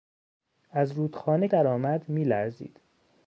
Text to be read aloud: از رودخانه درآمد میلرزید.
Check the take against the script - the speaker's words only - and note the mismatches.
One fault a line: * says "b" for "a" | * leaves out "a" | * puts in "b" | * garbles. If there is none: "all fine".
all fine